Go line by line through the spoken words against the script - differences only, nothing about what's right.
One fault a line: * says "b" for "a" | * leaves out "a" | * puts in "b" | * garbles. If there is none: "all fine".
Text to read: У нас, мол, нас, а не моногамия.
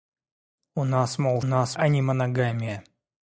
all fine